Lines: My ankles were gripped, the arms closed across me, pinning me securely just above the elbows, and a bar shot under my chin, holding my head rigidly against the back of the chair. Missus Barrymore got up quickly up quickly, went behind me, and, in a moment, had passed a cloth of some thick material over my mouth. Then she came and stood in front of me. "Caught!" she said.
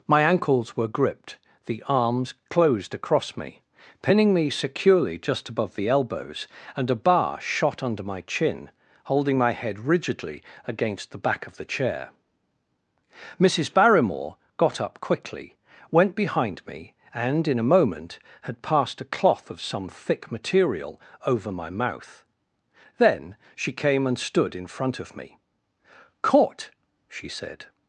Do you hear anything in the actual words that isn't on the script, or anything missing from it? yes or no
yes